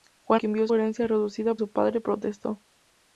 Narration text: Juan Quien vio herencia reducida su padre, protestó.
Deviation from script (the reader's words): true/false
false